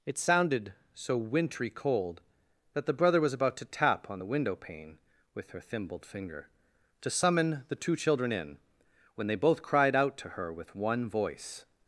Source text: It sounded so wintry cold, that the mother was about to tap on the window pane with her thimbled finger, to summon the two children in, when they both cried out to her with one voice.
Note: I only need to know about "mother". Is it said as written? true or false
false